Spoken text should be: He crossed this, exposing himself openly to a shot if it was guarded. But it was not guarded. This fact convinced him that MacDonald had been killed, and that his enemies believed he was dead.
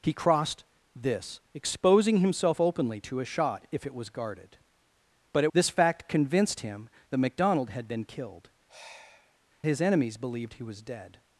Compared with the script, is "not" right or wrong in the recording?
wrong